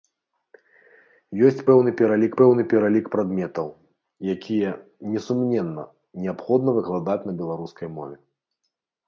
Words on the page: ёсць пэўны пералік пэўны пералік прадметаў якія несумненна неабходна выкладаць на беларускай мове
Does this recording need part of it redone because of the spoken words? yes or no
no